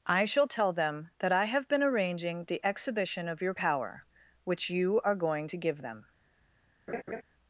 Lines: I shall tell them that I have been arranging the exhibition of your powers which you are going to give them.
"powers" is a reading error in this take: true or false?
true